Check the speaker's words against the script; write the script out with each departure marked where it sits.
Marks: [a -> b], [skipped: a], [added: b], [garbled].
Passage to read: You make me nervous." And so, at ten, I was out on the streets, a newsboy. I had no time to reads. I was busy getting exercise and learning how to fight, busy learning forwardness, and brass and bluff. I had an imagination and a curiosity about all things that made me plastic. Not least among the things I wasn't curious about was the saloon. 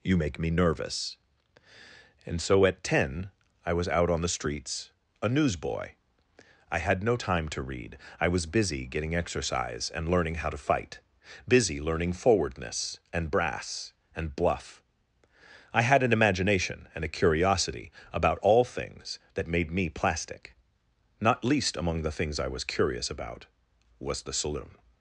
You make me nervous." And so, at ten, I was out on the streets, a newsboy. I had no time to [reads. -> read] I was busy getting exercise and learning how to fight, busy learning forwardness, and brass and bluff. I had an imagination and a curiosity about all things that made me plastic. Not least among the things I [wasn't -> was] curious about was the saloon.